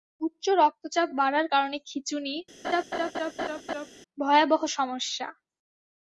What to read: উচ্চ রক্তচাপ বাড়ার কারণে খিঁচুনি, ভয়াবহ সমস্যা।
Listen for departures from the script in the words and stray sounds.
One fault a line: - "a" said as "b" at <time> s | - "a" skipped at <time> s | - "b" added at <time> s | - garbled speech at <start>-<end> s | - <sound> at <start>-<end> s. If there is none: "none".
- laugh at 2.6-3.9 s